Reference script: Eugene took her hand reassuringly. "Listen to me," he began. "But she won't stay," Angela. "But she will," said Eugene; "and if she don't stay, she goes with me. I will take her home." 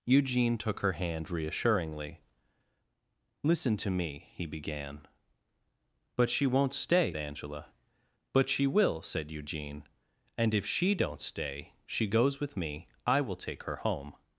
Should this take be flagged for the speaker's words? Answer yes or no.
no